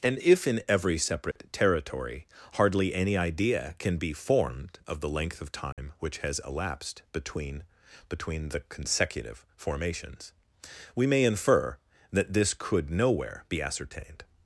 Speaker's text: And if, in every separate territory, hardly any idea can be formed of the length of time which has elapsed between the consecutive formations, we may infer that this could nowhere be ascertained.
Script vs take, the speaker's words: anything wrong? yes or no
yes